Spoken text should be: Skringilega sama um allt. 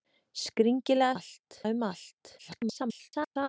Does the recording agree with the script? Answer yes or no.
no